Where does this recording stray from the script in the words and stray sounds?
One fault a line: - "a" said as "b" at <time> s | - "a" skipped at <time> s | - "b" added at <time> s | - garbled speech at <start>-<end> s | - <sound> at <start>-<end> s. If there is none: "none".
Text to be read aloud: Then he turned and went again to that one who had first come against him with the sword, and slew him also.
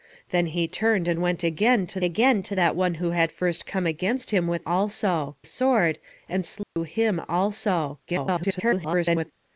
- "again to" added at 2.0 s
- "the" said as "also" at 4.7 s
- dropout at 6.6-6.8 s
- garbled speech at 8.1-9.3 s